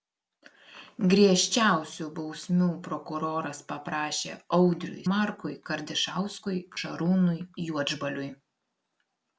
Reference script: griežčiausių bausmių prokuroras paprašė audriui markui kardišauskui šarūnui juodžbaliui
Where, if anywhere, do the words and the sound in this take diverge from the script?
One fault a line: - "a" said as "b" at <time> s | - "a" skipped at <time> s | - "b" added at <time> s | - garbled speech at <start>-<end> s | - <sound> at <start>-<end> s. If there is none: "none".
none